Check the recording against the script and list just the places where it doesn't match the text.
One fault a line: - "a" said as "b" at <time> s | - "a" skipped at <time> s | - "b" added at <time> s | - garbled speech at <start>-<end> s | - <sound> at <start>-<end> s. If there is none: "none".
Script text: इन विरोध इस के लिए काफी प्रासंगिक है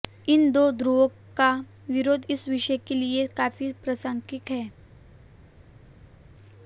- "दो ध्रुवों का" added at 0.5 s
- "विषय" added at 2.5 s